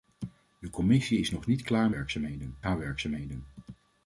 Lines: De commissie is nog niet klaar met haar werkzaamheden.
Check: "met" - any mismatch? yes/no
yes